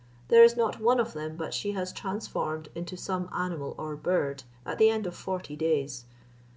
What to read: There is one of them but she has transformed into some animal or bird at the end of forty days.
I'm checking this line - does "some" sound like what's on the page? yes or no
yes